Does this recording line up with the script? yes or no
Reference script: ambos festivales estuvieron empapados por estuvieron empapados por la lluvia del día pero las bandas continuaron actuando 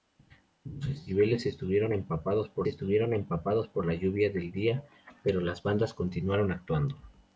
yes